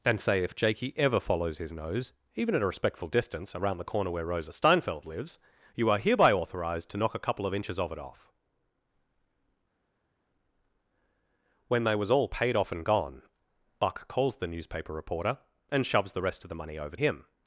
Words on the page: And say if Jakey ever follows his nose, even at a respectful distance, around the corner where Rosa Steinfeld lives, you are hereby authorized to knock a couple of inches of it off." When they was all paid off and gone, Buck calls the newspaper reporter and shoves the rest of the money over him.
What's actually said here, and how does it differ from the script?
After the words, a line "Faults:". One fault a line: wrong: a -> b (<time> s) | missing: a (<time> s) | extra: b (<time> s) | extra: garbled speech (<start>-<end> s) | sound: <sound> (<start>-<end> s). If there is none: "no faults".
And say if Jakey ever follows his nose, even at a respectful distance, around the corner where Rosa Steinfeld lives, you are hereby authorized to knock a couple of inches of it off." When they was all paid off and gone, Buck calls the newspaper reporter and shoves the rest of the money over him.
Faults:
no faults